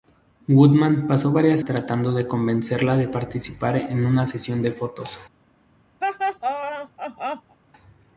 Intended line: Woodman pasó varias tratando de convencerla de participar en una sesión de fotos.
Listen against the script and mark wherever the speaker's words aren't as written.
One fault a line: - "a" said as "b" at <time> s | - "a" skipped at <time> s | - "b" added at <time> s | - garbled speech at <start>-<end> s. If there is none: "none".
none